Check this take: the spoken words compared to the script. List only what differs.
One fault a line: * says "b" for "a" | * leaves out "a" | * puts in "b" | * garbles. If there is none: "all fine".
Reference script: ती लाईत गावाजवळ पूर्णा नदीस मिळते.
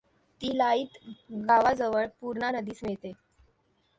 all fine